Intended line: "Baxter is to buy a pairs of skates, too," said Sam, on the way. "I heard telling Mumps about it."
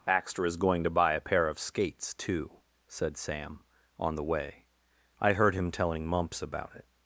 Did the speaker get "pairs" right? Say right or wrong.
wrong